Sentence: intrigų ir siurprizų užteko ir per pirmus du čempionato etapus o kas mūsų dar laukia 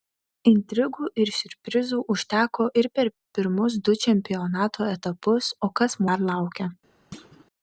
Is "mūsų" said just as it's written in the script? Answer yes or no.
no